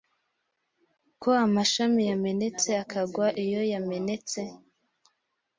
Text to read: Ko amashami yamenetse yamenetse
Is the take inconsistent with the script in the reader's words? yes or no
yes